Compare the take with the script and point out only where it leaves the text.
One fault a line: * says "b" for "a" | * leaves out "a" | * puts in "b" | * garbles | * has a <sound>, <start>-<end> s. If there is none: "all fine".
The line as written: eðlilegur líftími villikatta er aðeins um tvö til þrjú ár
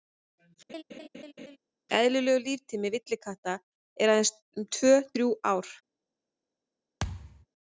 * has a laugh, 0.7-1.6 s
* leaves out "til"
* has a thud, 7.0-7.5 s